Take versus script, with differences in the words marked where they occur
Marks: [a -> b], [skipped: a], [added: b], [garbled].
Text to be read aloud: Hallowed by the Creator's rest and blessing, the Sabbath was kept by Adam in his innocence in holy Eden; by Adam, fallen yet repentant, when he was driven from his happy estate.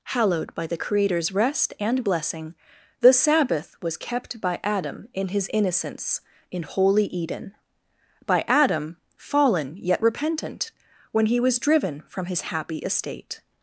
Hallowed by the Creator's rest and blessing, the Sabbath was kept by Adam in his innocence in holy Eden; by Adam, fallen yet repentant, when he was driven from his happy estate.